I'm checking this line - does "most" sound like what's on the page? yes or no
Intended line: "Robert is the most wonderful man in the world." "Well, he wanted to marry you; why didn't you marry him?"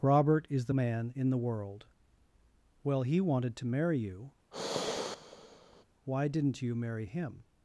no